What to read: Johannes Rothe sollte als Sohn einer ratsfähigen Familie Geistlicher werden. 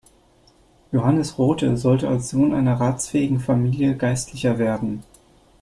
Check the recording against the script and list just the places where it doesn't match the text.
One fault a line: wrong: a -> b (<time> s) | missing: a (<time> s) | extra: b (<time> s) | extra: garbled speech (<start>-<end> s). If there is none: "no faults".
no faults